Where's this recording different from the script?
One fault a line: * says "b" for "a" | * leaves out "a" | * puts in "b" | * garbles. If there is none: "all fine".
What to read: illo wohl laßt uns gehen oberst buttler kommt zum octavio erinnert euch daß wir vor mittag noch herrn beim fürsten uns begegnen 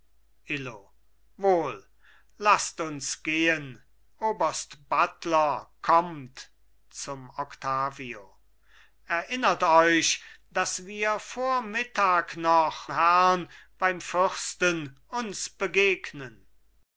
all fine